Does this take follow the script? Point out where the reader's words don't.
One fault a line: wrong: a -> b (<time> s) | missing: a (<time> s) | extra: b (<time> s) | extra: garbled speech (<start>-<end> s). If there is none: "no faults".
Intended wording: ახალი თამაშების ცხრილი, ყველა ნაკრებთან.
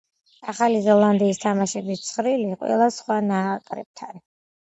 extra: ზელანდიის (0.8 s)
extra: სხვა (3.0 s)